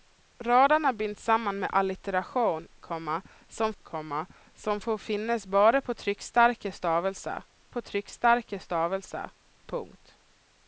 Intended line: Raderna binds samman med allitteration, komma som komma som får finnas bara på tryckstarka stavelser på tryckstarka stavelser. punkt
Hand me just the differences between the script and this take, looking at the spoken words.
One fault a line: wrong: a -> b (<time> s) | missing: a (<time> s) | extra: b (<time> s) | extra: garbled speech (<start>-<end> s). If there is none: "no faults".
no faults